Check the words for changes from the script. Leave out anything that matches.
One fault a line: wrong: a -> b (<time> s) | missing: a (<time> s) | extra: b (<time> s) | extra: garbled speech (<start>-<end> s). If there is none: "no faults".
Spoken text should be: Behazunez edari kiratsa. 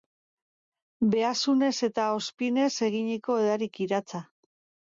extra: eta ozpinez eginiko (1.9 s)